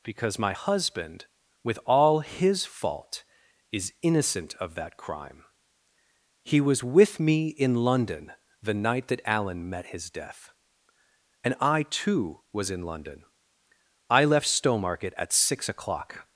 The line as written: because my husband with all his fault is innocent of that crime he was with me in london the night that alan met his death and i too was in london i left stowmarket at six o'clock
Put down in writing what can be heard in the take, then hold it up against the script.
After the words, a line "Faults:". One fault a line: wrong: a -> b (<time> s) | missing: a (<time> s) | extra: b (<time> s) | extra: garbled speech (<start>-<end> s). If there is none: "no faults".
because my husband with all his fault is innocent of that crime he was with me in london the night that alan met his death and i too was in london i left stowmarket at six o'clock
Faults:
no faults